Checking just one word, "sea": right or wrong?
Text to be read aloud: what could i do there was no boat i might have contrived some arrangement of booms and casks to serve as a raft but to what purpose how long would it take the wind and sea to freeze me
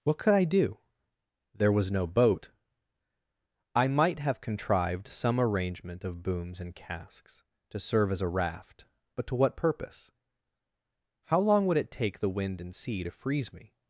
right